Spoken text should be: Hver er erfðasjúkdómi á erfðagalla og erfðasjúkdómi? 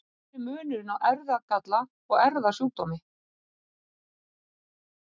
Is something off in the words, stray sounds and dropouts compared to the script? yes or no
yes